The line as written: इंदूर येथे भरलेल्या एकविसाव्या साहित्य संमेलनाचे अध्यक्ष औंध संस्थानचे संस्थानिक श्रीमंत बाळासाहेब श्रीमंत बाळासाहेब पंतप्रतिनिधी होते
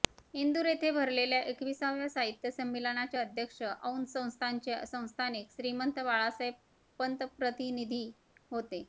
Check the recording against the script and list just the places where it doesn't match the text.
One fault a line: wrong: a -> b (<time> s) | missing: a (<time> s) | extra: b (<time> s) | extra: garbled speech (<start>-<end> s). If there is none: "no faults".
missing: श्रीमंत बाळासाहेब (6.5 s)